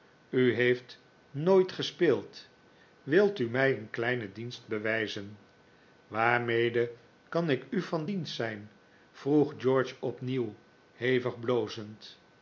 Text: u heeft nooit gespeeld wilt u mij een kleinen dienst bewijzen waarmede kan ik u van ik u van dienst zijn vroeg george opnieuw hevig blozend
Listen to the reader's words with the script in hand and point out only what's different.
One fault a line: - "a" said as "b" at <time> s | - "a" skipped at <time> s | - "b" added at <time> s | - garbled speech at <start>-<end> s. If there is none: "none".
- "ik u van" skipped at 8.1 s